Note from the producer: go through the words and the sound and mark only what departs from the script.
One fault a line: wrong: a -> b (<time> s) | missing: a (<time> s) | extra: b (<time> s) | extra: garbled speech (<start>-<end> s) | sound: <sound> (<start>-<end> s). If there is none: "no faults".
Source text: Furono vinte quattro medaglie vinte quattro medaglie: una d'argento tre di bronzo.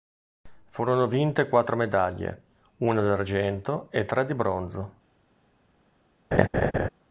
missing: vinte quattro medaglie (2.4 s)
extra: e (3.9 s)
sound: laugh (6.3-6.9 s)